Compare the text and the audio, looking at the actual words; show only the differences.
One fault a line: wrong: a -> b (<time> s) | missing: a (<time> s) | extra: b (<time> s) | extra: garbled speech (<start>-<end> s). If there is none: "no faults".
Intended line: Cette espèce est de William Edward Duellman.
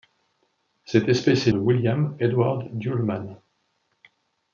no faults